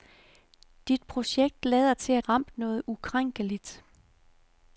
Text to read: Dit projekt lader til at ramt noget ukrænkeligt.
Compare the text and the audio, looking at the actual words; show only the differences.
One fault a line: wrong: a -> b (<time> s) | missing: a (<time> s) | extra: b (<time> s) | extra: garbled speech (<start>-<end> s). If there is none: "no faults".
no faults